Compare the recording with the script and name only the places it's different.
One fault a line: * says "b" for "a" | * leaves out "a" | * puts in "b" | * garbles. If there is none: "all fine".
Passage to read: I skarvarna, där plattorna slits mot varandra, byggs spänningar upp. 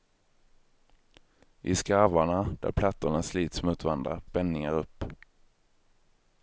* leaves out "byggs"